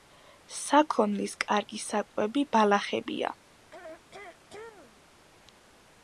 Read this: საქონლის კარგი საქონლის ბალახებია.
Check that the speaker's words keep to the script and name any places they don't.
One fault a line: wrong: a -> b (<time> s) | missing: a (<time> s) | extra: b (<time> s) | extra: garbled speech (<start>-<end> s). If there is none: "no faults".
wrong: საქონლის -> საკვები (1.8 s)